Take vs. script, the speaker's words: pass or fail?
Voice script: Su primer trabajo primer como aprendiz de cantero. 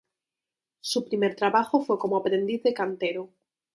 fail